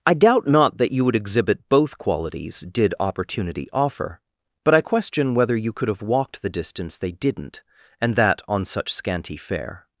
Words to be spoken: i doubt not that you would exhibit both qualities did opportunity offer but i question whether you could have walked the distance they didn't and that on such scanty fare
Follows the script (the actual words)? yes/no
yes